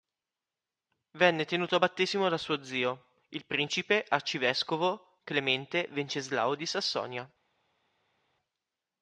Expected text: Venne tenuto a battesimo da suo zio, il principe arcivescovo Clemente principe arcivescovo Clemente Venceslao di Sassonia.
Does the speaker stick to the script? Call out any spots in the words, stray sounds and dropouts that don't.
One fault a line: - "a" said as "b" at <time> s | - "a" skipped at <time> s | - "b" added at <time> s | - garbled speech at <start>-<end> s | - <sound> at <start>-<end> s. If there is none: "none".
- "principe arcivescovo Clemente" skipped at 5.9 s